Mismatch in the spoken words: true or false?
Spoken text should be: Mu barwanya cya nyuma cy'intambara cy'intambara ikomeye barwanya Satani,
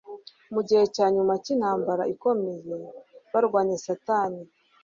true